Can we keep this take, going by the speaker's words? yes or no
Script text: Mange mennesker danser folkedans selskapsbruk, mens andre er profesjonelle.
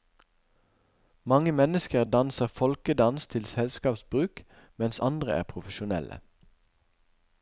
no